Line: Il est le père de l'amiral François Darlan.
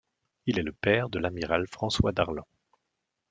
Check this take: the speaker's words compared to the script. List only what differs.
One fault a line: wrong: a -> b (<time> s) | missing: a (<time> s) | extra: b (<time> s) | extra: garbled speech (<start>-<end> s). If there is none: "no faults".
no faults